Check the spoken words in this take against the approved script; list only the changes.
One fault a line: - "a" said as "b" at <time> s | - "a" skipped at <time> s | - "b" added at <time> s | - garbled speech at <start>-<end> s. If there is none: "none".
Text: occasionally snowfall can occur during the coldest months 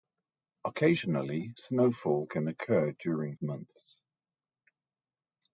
- "the coldest" skipped at 3.3 s